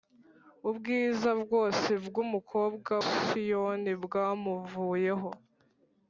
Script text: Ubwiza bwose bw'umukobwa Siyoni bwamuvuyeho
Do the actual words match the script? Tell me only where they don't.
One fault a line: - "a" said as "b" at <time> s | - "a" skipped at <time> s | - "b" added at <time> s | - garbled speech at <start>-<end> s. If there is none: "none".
none